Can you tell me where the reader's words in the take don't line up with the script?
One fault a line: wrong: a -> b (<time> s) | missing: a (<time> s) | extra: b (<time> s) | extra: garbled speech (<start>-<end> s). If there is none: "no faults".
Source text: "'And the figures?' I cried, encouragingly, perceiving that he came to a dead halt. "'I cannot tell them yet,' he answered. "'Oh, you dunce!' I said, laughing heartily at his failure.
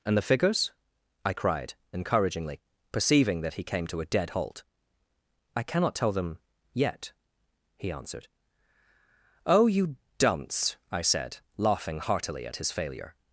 no faults